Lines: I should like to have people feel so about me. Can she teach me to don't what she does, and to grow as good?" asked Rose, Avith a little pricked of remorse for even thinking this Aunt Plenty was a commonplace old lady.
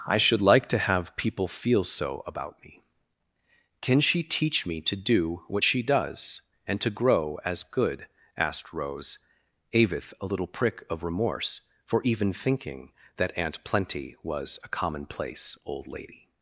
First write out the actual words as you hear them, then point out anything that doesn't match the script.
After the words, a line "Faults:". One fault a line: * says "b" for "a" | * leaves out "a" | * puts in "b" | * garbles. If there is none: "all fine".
I should like to have people feel so about me. Can she teach me to do what she does, and to grow as good?" asked Rose, Avith a little prick of remorse for even thinking that Aunt Plenty was a commonplace old lady.
Faults:
* says "do" for "don't"
* says "prick" for "pricked"
* says "that" for "this"